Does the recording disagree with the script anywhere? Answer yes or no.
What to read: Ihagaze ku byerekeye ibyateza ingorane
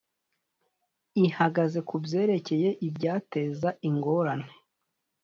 no